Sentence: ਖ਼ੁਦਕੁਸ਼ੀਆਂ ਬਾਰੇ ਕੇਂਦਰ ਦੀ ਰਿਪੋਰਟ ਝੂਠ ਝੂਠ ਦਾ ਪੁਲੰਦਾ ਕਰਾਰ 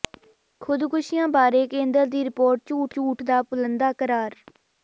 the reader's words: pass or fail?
pass